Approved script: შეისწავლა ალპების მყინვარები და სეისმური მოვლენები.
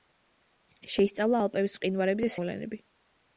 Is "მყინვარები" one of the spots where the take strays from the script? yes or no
no